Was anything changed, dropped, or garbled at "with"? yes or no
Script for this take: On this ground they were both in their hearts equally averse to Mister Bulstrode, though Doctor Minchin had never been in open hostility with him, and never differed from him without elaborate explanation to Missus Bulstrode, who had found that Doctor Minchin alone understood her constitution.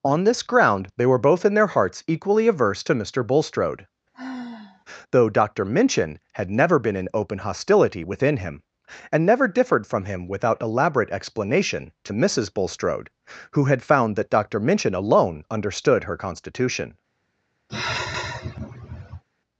yes